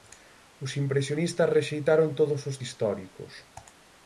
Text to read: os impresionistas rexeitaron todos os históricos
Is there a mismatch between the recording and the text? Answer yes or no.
no